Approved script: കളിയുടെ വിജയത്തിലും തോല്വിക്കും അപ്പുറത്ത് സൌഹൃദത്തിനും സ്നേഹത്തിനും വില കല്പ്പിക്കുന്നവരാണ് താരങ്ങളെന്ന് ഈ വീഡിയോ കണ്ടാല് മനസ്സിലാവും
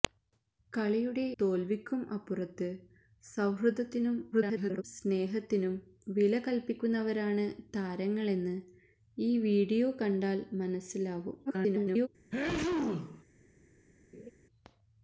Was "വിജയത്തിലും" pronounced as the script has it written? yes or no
no